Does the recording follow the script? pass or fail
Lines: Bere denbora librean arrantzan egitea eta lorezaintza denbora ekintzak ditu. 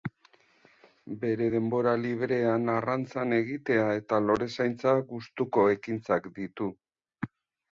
fail